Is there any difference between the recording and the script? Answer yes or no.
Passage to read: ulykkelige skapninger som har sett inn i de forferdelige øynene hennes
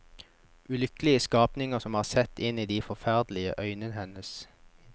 no